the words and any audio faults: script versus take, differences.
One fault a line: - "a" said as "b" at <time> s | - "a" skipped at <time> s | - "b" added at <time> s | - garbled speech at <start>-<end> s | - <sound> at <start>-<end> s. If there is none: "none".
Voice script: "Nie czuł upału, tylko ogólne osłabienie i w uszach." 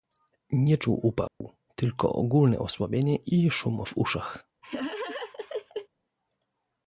- dropout at 1.3-1.4 s
- "szum" added at 3.5 s
- laugh at 4.6-5.9 s